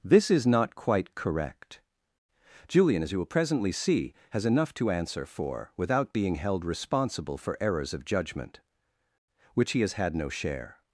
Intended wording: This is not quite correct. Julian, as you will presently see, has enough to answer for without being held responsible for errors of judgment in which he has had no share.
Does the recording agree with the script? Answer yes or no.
no